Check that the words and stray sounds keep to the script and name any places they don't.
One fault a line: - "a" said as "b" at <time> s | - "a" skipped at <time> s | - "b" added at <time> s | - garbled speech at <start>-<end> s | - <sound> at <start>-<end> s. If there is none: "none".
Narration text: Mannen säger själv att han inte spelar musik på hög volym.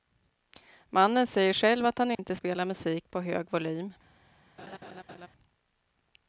- dropout at 2.1-2.2 s
- laugh at 4.6-5.3 s